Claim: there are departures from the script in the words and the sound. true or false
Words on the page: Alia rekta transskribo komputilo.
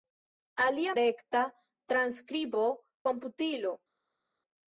false